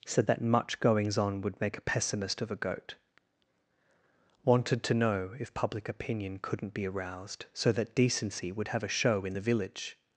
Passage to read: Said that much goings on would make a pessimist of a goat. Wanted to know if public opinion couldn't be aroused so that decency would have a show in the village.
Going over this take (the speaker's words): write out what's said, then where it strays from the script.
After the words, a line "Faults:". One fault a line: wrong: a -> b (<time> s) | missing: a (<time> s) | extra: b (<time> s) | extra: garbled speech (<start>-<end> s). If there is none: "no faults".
Said that much goings on would make a pessimist of a goat. Wanted to know if public opinion couldn't be aroused so that decency would have a show in the village.
Faults:
no faults